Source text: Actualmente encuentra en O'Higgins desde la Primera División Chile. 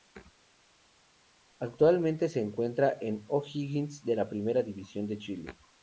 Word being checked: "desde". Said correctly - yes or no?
no